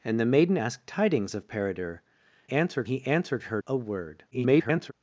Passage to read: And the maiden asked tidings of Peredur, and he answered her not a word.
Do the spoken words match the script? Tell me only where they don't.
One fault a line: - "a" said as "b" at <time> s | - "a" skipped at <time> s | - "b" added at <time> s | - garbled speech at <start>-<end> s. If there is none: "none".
- "and" said as "answered" at 2.5 s
- "not" skipped at 3.6 s
- garbled speech at 4.3-4.9 s